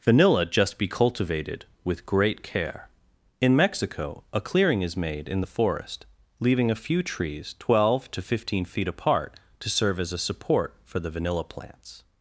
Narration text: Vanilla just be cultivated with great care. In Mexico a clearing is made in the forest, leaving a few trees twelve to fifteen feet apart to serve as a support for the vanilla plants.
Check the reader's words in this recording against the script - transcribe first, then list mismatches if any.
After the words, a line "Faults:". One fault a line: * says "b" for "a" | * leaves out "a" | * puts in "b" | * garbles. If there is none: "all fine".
Vanilla just be cultivated with great care. In Mexico a clearing is made in the forest, leaving a few trees twelve to fifteen feet apart to serve as a support for the vanilla plants.
Faults:
all fine